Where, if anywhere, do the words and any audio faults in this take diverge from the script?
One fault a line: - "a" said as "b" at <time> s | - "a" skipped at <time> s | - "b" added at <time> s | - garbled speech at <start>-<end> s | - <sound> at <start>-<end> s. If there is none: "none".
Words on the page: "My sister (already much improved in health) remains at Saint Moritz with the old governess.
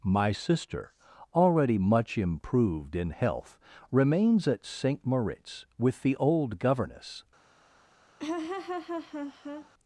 - laugh at 8.2-9.7 s